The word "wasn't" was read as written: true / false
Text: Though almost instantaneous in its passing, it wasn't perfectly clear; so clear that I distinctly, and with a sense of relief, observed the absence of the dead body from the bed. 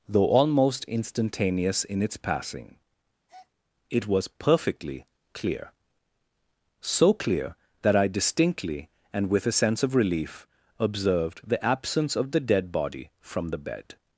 false